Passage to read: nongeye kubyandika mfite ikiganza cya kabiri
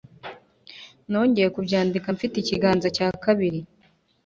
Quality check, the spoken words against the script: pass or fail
pass